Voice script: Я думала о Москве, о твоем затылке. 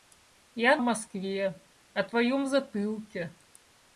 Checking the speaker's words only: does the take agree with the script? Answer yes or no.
no